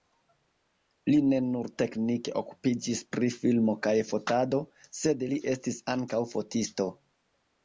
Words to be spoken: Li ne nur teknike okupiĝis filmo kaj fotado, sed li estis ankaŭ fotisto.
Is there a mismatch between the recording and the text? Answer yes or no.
yes